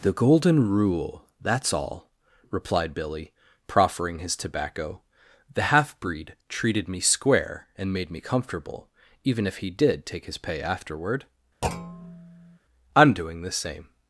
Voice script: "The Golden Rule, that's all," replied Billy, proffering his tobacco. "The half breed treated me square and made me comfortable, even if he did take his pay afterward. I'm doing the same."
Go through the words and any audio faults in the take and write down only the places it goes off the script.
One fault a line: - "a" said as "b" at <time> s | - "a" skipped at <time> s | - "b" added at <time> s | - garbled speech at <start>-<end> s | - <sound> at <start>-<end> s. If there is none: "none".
- thud at 11.6-12.6 s